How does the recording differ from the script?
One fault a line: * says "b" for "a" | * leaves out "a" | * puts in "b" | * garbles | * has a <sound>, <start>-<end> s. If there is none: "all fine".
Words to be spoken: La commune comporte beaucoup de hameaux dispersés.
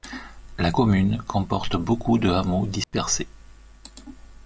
* has a dropout, 2.8-2.9 s